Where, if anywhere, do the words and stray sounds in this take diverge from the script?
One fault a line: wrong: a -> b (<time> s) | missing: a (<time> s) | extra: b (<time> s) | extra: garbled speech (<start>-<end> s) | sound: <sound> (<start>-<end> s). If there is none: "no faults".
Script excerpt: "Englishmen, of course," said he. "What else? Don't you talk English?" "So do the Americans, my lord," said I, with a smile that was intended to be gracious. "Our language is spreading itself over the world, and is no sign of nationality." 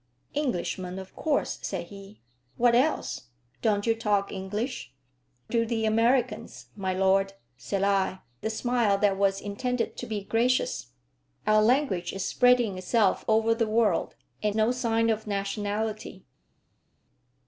missing: So (4.9 s)
missing: with (8.2 s)
missing: is (14.6 s)